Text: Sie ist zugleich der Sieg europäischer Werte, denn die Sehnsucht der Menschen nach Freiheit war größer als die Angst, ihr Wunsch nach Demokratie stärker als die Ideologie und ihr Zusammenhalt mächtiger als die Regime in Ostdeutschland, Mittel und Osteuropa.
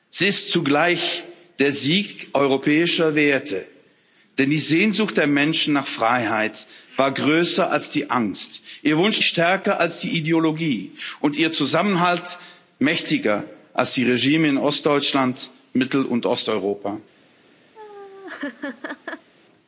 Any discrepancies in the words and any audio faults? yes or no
yes